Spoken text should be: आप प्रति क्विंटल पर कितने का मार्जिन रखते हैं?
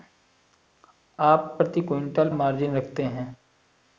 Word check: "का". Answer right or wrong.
wrong